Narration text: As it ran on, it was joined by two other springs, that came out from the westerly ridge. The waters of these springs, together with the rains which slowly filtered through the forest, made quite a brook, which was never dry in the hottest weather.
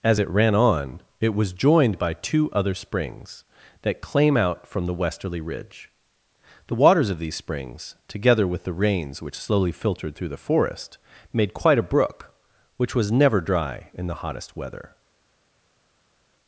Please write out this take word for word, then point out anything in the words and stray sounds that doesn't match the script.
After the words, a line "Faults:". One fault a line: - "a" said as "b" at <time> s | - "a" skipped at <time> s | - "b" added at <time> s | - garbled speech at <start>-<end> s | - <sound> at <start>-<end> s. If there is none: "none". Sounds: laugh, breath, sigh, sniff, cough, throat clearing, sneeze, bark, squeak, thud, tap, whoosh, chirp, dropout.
As it ran on, it was joined by two other springs, that claim out from the westerly ridge. The waters of these springs, together with the rains which slowly filtered through the forest, made quite a brook, which was never dry in the hottest weather.
Faults:
- "came" said as "claim" at 4.0 s